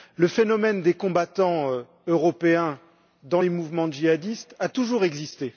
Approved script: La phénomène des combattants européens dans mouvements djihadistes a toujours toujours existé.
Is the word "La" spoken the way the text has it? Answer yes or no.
no